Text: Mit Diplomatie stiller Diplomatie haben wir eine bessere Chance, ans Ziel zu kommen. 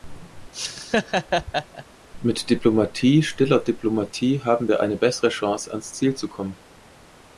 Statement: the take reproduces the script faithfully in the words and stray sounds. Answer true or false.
false